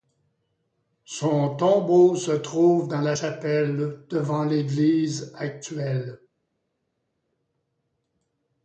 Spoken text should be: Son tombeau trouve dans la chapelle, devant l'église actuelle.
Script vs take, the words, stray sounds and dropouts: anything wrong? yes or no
yes